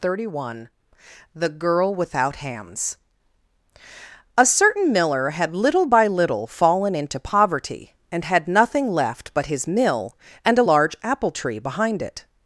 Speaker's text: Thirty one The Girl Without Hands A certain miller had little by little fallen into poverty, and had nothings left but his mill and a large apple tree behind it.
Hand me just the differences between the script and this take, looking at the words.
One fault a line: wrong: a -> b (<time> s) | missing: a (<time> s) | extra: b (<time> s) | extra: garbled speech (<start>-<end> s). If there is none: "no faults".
wrong: nothings -> nothing (8.5 s)